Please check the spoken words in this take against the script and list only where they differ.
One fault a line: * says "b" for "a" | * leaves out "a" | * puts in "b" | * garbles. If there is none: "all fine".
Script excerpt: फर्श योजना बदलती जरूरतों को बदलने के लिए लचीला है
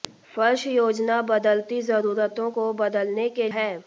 * leaves out "लिए लचीला"